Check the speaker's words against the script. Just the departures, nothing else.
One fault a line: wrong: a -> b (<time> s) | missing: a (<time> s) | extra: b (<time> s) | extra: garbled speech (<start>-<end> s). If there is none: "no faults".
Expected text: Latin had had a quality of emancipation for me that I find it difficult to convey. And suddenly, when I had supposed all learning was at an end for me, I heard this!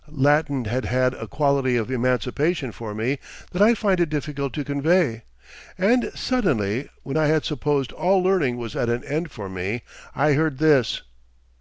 no faults